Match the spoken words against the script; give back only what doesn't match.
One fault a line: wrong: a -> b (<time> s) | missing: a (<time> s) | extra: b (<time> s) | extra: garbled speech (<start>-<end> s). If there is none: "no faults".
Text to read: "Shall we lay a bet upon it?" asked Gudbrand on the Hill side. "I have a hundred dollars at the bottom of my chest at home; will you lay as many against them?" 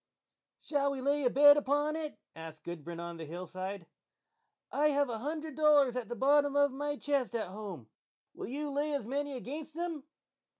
no faults